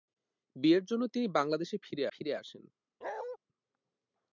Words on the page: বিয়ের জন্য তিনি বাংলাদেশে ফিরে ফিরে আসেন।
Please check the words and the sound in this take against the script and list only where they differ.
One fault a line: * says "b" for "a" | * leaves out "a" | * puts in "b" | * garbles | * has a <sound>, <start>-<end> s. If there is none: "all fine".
* has a bark, 3.0-3.4 s